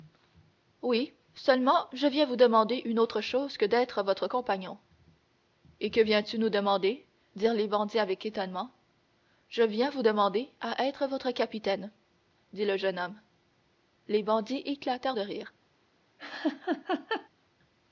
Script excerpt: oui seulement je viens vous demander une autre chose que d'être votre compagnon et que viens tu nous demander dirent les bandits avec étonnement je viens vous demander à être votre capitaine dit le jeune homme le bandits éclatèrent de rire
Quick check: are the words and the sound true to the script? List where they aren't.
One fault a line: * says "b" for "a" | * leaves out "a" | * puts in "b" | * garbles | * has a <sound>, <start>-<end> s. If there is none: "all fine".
* says "les" for "le"
* has a laugh, 16.2-17.3 s